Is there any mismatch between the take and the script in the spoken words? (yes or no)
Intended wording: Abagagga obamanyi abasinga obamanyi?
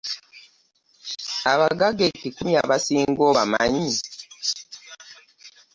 yes